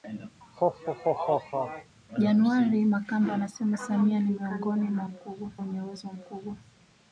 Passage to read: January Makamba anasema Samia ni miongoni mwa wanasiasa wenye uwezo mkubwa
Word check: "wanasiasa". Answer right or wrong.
wrong